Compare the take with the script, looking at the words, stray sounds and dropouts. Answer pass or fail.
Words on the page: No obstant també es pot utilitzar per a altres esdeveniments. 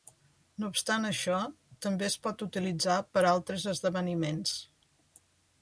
fail